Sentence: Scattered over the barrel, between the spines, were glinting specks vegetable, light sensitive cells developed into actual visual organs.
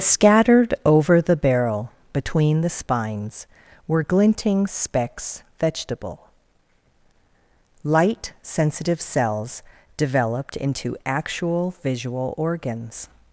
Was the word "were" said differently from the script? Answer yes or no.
no